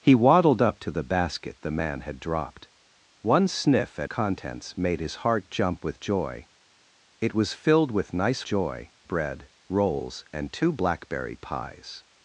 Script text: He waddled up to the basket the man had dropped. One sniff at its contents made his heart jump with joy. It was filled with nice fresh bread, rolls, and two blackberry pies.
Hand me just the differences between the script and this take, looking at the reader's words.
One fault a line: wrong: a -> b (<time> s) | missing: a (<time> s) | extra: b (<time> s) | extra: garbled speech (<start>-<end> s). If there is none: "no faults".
missing: its (4.1 s)
wrong: fresh -> joy (8.4 s)